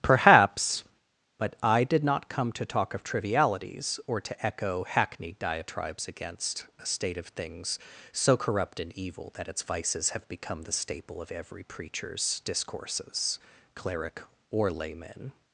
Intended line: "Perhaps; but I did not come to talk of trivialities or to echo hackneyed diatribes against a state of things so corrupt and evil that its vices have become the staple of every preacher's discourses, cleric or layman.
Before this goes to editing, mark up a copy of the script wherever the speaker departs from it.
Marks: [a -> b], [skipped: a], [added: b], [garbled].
"Perhaps; but I did not come to talk of trivialities or to echo hackneyed diatribes against a state of things so corrupt and evil that its vices have become the staple of every preacher's discourses, cleric or layman.